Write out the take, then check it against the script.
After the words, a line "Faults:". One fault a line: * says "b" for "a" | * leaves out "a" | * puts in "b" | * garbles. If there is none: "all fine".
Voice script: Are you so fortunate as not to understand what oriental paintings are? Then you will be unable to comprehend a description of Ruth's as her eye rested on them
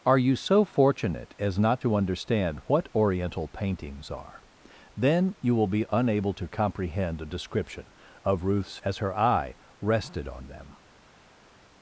Are you so fortunate as not to understand what oriental paintings are? Then you will be unable to comprehend a description of Ruth's as her eye rested on them
Faults:
all fine